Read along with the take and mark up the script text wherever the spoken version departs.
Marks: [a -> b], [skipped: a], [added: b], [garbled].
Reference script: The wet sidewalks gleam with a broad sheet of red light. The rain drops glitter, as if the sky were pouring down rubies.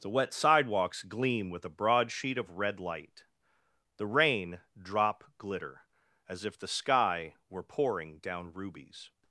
The wet sidewalks gleam with a broad sheet of red light. The rain [drops -> drop] glitter, as if the sky were pouring down rubies.